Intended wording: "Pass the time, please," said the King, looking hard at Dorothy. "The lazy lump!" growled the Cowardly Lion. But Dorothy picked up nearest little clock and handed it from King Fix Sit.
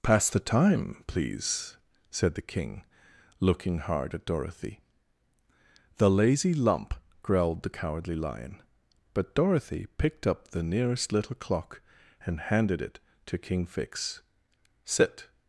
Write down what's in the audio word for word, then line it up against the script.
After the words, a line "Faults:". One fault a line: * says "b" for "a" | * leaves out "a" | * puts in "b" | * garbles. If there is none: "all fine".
"Pass the time, please," said the King, looking hard at Dorothy. "The lazy lump!" growled the Cowardly Lion. But Dorothy picked up the nearest little clock and handed it to King Fix Sit.
Faults:
* puts in "the"
* says "to" for "from"